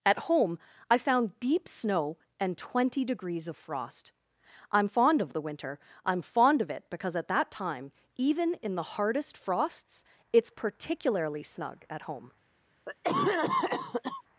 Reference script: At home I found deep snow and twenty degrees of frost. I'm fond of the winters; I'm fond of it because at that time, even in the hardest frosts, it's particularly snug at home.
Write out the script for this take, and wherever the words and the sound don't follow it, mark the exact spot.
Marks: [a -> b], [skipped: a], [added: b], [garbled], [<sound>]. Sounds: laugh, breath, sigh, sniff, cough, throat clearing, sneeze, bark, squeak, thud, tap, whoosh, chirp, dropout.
At home I found deep snow and twenty degrees of frost. I'm fond of the [winters; -> winter] I'm fond of it because at that time, even in the hardest frosts, it's particularly snug at home. [cough]